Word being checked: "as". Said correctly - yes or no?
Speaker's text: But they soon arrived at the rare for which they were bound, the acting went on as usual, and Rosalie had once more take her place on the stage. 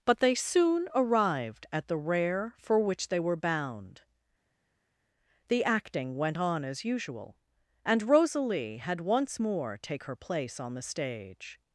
yes